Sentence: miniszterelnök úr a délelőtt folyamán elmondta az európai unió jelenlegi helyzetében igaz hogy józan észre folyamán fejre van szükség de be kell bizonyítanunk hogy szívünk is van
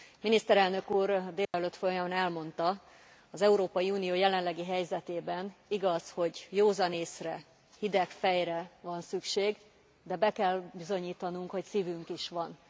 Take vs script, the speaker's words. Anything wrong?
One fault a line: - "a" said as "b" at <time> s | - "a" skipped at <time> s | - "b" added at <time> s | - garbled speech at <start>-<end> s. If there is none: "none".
- "folyamán" said as "hideg" at 7.8 s